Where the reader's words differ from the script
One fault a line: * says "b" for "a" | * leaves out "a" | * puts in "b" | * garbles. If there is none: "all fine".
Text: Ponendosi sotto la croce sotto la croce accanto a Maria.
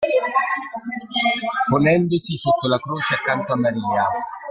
* leaves out "sotto la croce"